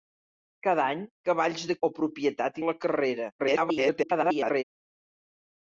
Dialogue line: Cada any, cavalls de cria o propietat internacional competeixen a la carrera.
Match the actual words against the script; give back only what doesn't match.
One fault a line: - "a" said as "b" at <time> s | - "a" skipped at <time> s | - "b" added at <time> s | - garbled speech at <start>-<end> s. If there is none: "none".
- "cria" skipped at 1.8 s
- "internacional competeixen" skipped at 2.6 s
- garbled speech at 3.4-4.6 s